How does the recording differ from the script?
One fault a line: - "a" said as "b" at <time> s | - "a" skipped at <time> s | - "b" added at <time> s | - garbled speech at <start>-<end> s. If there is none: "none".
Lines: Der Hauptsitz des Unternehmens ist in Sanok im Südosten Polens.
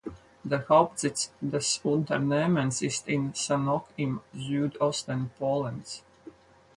none